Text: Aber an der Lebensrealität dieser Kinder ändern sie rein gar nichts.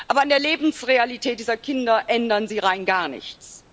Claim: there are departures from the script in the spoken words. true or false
false